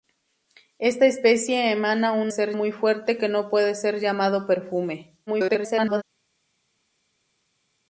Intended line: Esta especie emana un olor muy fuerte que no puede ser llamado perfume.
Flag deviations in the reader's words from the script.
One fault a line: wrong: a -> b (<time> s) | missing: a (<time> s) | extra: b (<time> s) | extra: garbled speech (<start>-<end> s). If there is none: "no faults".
wrong: olor -> ser (2.3 s)
extra: garbled speech (5.3-6.0 s)